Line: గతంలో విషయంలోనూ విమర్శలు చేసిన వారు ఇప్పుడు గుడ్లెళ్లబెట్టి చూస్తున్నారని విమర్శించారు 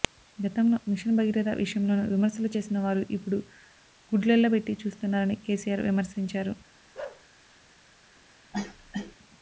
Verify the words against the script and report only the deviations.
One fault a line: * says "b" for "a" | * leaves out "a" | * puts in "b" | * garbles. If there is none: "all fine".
* puts in "మిషన్ భగీరథ"
* puts in "కేసీఆర్"